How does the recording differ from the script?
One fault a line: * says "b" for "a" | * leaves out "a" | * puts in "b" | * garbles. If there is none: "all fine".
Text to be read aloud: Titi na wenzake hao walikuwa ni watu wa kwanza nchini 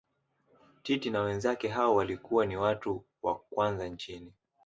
all fine